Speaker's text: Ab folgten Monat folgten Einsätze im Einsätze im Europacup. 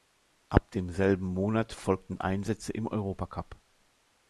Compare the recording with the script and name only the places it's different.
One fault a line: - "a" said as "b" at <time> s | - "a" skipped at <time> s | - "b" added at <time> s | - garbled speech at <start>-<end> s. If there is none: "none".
- "folgten" said as "demselben" at 0.7 s
- "Einsätze im" skipped at 2.9 s